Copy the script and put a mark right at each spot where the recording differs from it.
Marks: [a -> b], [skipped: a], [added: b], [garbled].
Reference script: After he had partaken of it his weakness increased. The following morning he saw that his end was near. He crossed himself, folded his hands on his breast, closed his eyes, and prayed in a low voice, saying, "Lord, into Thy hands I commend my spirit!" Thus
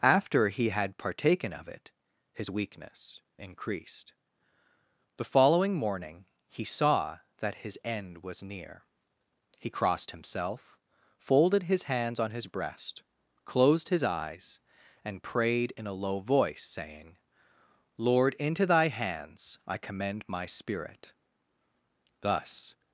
After he had partaken of it his weakness increased. The following morning he saw that his end was near. He crossed himself, folded his hands on his breast, closed his eyes, and prayed in a low voice, saying, "Lord, into Thy hands I commend my spirit!" Thus